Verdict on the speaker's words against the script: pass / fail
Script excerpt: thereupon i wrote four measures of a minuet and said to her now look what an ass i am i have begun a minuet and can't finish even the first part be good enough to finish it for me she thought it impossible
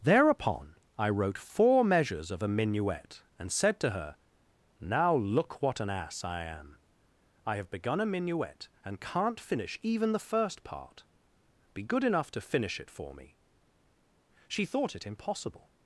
pass